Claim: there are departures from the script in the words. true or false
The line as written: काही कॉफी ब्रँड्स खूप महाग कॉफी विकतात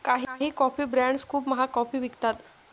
false